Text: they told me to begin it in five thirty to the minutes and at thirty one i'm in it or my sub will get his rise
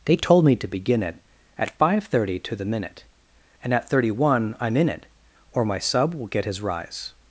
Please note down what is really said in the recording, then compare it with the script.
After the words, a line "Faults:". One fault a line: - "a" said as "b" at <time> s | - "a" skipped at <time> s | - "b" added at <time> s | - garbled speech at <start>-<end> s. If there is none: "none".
they told me to begin it at five thirty to the minute and at thirty one i'm in it or my sub will get his rise
Faults:
- "in" said as "at" at 1.6 s
- "minutes" said as "minute" at 2.6 s